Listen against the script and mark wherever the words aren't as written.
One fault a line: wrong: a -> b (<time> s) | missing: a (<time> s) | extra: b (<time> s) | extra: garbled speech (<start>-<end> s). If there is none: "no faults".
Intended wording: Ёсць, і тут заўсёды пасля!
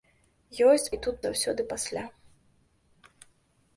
no faults